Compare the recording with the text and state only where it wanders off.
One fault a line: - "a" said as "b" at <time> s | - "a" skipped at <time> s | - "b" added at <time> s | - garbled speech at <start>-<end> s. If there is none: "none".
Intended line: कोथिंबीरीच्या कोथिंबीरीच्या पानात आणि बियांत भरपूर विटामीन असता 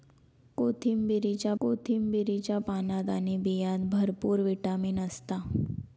none